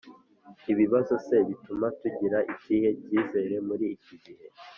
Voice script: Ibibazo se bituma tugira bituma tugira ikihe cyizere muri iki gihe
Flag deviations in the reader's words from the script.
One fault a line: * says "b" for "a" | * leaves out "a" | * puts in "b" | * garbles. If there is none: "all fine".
* leaves out "bituma tugira"